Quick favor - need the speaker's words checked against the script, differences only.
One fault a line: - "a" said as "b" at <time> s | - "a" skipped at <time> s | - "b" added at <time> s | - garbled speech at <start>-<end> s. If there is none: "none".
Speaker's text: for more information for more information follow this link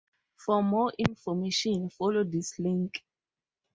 - "for more information" skipped at 1.9 s